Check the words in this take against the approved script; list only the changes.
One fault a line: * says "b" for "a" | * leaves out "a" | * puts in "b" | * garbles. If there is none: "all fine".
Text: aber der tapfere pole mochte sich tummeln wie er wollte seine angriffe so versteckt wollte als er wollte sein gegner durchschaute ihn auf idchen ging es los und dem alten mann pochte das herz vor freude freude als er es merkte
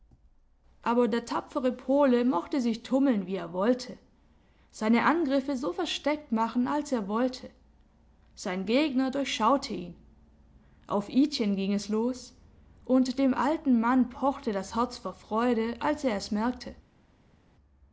* says "machen" for "wollte"
* leaves out "freude"